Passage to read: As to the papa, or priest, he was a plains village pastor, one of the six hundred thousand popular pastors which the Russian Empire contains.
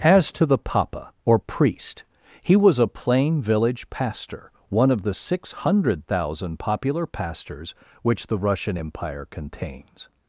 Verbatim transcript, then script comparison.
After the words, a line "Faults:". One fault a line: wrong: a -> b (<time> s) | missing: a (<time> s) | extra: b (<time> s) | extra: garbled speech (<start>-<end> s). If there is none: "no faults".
As to the papa, or priest, he was a plain village pastor, one of the six hundred thousand popular pastors which the Russian Empire contains.
Faults:
wrong: plains -> plain (2.9 s)